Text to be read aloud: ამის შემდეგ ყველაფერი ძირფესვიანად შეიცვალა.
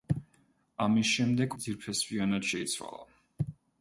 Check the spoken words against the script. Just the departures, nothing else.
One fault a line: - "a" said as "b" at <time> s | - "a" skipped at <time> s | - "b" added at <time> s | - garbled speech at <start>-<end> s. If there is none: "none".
- "ყველაფერი" skipped at 1.6 s